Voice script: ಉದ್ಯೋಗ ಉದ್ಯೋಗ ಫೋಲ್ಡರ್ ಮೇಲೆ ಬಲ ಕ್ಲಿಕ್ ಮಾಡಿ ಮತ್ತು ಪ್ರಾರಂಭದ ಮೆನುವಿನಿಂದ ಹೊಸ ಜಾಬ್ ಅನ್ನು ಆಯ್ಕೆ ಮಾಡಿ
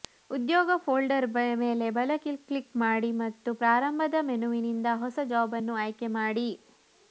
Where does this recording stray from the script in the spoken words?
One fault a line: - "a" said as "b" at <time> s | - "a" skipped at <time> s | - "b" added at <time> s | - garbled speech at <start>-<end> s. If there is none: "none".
- "ಉದ್ಯೋಗ" skipped at 0.8 s